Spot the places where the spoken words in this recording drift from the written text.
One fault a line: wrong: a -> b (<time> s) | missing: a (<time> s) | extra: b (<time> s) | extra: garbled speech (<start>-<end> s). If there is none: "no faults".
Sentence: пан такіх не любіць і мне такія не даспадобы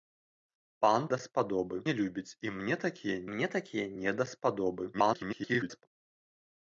wrong: такіх -> даспадобы (1.1 s)
extra: мне такія (3.3 s)
extra: garbled speech (4.9-5.9 s)